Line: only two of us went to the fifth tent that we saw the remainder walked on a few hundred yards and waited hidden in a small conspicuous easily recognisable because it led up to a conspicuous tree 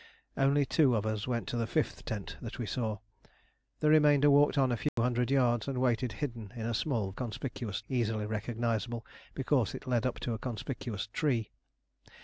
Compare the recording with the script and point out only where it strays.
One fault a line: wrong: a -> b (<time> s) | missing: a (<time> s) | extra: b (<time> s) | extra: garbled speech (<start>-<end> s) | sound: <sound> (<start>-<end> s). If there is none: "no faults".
sound: dropout (4.9-5.0 s)